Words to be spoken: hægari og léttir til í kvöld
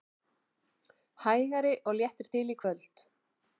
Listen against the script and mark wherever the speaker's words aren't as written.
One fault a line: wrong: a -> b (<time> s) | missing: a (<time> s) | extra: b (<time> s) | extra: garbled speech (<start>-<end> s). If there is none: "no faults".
no faults